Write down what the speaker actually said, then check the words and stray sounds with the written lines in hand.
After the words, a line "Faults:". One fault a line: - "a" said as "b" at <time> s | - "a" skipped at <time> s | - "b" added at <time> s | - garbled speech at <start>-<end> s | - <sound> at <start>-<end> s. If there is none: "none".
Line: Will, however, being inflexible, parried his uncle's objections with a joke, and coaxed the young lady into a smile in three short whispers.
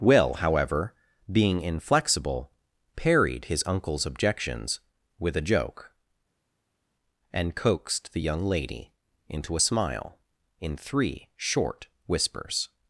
Will, however, being inflexible, parried his uncle's objections with a joke, and coaxed the young lady into a smile in three short whispers.
Faults:
none